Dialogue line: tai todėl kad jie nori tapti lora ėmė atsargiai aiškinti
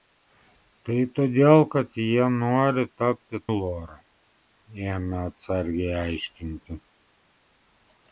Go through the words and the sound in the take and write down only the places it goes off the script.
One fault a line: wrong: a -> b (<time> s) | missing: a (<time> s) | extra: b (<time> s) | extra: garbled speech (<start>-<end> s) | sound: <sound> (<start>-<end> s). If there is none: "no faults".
no faults